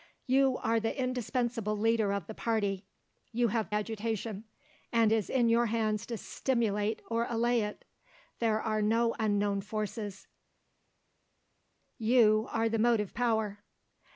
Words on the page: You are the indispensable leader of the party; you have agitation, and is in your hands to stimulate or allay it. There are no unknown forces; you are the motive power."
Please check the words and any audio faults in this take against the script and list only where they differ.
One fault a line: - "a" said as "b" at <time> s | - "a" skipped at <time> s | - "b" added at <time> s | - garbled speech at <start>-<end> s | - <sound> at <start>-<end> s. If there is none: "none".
none